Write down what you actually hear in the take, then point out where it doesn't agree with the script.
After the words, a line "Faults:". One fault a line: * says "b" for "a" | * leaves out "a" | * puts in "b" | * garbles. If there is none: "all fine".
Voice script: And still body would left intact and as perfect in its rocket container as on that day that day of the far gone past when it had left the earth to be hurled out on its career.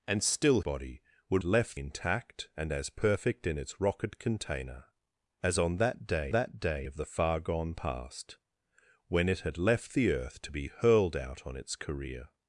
And still body would left intact and as perfect in its rocket container as on that day that day of the far gone past when it had left the earth to be hurled out on its career.
Faults:
all fine